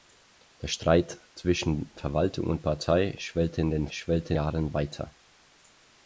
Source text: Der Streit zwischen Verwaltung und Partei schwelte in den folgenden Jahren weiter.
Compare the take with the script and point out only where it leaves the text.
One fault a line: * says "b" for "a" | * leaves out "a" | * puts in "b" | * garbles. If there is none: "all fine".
* says "schwelte" for "folgenden"